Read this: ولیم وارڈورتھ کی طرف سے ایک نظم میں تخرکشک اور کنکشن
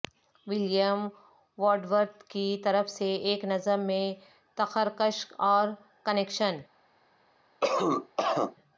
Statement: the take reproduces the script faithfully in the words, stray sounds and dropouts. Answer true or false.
false